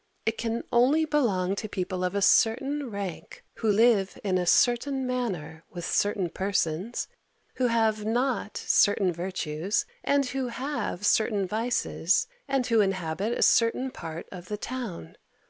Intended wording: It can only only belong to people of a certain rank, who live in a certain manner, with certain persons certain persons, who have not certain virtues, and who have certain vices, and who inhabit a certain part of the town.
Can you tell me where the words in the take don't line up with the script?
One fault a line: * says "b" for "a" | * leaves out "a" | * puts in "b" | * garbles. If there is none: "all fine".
* leaves out "only"
* leaves out "certain persons"